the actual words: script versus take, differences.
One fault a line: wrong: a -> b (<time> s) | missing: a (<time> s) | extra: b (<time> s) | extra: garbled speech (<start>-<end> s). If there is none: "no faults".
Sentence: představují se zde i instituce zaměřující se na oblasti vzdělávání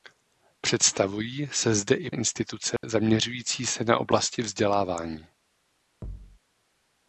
no faults